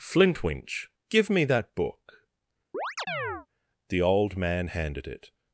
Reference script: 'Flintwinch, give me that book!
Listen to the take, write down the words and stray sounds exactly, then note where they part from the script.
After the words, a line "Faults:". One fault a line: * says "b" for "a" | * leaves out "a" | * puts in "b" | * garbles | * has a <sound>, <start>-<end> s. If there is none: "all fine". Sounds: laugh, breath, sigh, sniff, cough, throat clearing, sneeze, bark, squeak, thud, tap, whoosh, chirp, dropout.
'Flintwinch, give me that book! The old man handed it
Faults:
* has a chirp, 2.7-3.5 s
* puts in "The old man handed it"